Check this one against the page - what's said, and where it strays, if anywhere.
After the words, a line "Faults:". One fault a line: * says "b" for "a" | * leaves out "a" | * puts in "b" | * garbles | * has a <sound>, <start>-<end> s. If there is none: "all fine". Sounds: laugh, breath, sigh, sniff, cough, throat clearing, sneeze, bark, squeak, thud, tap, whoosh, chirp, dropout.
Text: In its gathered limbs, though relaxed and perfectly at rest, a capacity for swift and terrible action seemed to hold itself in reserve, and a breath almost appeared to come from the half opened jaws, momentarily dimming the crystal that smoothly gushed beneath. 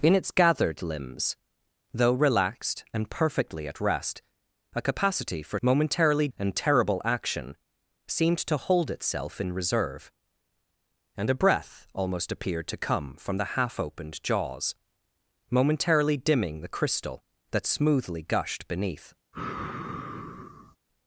In its gathered limbs, though relaxed and perfectly at rest, a capacity for momentarily and terrible action seemed to hold itself in reserve, and a breath almost appeared to come from the half opened jaws, momentarily dimming the crystal that smoothly gushed beneath.
Faults:
* says "momentarily" for "swift"
* has a sigh, 19.3-20.8 s